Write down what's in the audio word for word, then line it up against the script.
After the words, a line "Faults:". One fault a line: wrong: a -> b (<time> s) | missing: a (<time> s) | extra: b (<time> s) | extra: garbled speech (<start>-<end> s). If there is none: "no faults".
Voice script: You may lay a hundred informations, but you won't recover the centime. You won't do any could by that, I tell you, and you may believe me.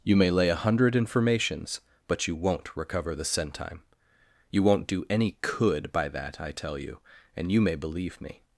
You may lay a hundred informations, but you won't recover the centime. You won't do any could by that, I tell you, and you may believe me.
Faults:
no faults